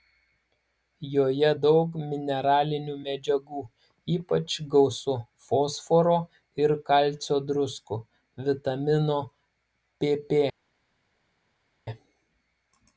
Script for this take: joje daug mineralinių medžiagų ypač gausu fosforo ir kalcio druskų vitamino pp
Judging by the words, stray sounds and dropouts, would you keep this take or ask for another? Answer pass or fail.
pass